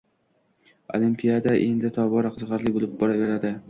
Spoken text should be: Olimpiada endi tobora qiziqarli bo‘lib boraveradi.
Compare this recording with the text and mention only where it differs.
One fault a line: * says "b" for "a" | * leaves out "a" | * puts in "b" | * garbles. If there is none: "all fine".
all fine